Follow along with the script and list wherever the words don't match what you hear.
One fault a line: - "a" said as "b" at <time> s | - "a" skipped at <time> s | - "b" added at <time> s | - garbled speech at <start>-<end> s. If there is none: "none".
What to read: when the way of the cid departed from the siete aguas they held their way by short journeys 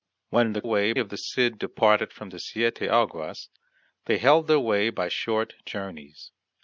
none